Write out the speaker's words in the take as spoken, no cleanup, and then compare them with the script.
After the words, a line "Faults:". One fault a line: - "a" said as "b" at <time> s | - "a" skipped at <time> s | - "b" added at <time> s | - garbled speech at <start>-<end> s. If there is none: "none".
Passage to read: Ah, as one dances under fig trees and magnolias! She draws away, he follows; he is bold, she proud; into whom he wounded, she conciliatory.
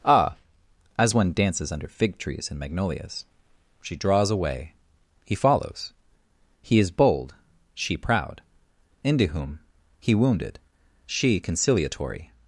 Ah, as one dances under fig trees and magnolias! She draws away, he follows; he is bold, she proud; into whom he wounded, she conciliatory.
Faults:
none